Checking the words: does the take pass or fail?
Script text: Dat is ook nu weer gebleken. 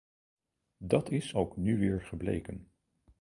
pass